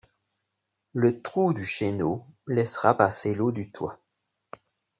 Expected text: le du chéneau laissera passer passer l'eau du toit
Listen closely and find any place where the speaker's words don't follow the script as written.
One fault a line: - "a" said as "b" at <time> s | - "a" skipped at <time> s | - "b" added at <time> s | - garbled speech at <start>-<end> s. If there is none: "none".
- "trou" added at 1.2 s
- "passer" skipped at 3.3 s